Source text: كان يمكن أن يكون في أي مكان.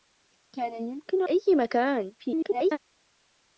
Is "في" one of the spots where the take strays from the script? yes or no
yes